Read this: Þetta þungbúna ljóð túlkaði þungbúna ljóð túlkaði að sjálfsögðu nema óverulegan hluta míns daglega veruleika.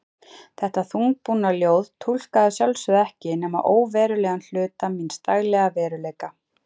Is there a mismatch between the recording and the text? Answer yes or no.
yes